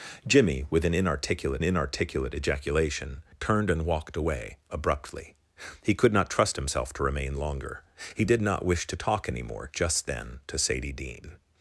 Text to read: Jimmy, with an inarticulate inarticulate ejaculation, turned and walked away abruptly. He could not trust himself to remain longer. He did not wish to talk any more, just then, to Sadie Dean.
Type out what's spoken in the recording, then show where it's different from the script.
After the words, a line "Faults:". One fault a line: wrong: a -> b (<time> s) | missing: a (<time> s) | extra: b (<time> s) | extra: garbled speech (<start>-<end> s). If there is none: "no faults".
Jimmy, with an inarticulate inarticulate ejaculation, turned and walked away abruptly. He could not trust himself to remain longer. He did not wish to talk any more, just then, to Sadie Dean.
Faults:
no faults